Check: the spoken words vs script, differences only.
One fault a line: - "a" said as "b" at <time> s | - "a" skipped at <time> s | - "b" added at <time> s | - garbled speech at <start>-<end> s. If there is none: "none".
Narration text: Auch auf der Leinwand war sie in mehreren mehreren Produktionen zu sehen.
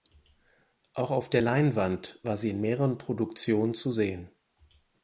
- "mehreren" skipped at 3.0 s